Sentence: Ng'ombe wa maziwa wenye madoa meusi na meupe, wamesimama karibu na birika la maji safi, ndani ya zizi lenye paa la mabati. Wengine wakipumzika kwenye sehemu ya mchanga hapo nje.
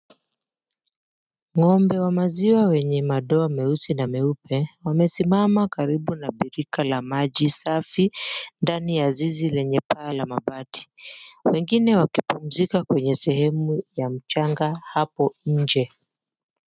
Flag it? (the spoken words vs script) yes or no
no